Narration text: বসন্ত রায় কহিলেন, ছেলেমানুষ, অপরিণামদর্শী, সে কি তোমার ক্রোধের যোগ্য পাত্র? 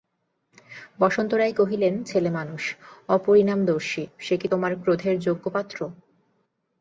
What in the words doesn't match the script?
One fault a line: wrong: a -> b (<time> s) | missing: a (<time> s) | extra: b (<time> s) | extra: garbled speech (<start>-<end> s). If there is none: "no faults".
no faults